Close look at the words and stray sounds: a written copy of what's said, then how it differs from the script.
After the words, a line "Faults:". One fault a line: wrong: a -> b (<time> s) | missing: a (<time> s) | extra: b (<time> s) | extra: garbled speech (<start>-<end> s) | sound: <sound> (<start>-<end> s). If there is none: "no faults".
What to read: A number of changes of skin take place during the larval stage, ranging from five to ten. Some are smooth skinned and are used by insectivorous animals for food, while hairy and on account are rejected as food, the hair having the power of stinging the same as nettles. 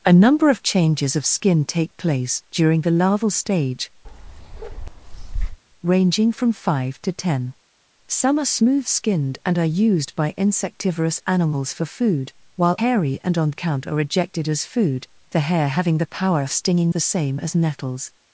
A number of changes of skin take place during the larval stage, ranging from five to ten. Some are smooth skinned and are used by insectivorous animals for food, while hairy and on account are rejected as food, the hair having the power of stinging the same as nettles.
Faults:
sound: bark (4.0-5.6 s)